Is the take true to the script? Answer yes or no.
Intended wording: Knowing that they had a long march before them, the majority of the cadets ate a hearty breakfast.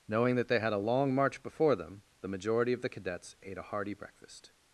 yes